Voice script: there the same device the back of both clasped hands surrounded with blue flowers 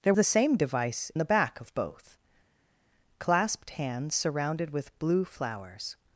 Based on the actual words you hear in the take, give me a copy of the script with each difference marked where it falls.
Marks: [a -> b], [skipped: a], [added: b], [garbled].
there the same device the back of both clasped hands surrounded with blue flowers